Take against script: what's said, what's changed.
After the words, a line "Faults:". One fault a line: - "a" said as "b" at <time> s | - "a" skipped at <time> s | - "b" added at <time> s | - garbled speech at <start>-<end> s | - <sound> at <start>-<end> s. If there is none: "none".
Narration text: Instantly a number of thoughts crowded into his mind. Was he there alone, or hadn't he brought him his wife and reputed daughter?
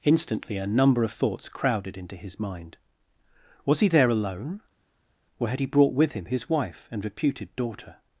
Instantly a number of thoughts crowded into his mind. Was he there alone, or had he brought with him his wife and reputed daughter?
Faults:
- "hadn't" said as "had" at 5.5 s
- "with" added at 5.9 s